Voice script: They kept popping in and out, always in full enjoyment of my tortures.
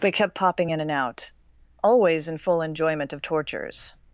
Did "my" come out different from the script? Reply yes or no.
yes